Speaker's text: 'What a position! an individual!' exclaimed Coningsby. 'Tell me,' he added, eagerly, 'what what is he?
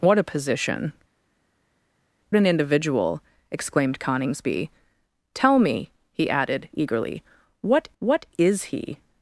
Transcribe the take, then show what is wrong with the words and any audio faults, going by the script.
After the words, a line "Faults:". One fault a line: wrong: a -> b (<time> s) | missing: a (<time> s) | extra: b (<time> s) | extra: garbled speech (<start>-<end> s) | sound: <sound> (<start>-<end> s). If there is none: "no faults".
'What a position! an individual!' exclaimed Coningsby. 'Tell me,' he added, eagerly, 'what what is he?
Faults:
no faults